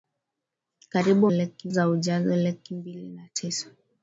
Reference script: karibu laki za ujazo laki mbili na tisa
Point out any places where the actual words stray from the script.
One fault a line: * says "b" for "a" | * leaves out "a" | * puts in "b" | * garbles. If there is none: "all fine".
all fine